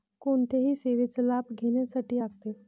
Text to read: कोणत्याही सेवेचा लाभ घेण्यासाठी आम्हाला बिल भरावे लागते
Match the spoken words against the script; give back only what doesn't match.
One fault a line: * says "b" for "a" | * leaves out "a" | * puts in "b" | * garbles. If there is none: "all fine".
* leaves out "आम्हाला बिल भरावे"